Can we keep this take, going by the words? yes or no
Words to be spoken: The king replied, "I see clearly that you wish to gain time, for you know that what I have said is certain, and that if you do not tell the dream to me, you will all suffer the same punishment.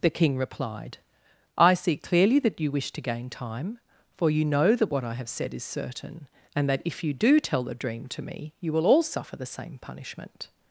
no